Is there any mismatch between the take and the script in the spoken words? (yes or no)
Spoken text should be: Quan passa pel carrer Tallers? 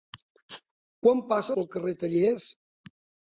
no